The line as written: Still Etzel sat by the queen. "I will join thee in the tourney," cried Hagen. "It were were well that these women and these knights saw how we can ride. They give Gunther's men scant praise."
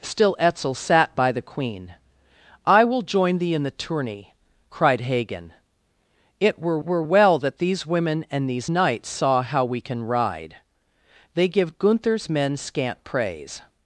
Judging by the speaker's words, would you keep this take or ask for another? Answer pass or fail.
pass